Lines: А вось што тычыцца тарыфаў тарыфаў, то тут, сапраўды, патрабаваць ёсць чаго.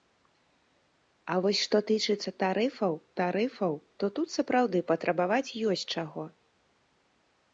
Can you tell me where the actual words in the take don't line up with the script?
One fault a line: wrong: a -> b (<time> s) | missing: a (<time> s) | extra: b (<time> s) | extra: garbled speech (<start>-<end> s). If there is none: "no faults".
no faults